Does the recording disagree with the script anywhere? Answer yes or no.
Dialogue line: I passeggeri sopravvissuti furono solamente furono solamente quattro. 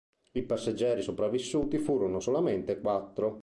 yes